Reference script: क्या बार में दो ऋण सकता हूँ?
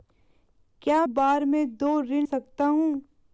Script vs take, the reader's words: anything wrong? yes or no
no